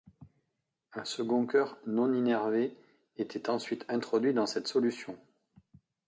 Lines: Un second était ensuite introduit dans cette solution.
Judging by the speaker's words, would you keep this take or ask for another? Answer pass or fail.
fail